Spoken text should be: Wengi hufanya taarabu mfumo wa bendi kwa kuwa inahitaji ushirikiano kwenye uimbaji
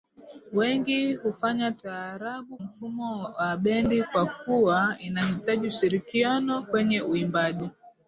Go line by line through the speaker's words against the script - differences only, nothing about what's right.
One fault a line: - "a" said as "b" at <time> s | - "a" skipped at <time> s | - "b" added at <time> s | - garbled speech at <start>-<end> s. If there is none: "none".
none